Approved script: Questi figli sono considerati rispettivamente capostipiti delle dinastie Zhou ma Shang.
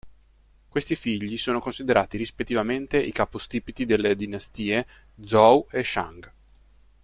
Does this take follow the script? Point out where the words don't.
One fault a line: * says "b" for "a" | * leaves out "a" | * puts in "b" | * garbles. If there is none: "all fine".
* puts in "i"
* says "e" for "ma"